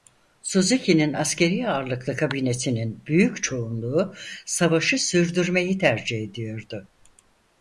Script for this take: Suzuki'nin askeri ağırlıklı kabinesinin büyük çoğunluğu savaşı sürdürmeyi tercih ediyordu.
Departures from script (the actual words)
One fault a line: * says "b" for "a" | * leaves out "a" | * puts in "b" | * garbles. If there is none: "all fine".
all fine